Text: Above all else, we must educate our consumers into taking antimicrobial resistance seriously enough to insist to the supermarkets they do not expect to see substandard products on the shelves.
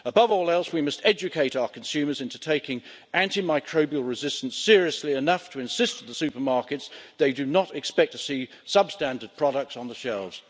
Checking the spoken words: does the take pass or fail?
pass